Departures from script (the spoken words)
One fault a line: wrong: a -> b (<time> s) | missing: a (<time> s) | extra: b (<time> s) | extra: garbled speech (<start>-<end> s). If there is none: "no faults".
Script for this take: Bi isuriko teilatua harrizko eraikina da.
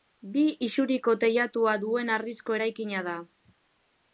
extra: duen (1.8 s)